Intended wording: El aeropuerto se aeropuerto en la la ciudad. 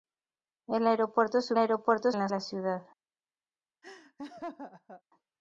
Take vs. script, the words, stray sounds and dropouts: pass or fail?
fail